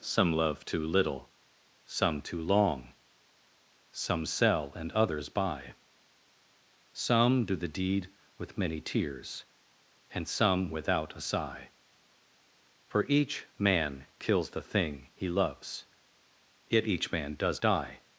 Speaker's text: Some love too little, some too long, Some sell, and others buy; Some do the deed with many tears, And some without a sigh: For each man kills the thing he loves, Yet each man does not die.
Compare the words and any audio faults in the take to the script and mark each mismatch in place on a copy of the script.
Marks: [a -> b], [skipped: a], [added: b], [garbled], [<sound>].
Some love too little, some too long, Some sell, and others buy; Some do the deed with many tears, And some without a sigh: For each man kills the thing he loves, Yet each man does [skipped: not] die.